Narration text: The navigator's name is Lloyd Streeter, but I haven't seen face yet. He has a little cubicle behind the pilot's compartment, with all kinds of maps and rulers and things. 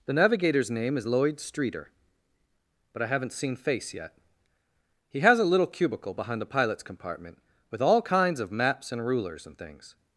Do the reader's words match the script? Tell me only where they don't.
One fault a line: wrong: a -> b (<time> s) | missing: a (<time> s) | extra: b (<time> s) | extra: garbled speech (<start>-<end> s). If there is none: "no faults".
no faults